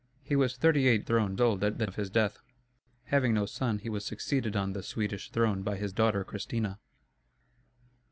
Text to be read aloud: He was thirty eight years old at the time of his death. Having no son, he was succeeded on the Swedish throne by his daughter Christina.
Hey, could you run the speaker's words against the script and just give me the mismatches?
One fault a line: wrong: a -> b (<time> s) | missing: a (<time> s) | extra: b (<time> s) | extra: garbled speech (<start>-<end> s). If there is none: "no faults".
wrong: years -> throne (1.0 s)
missing: time (1.8 s)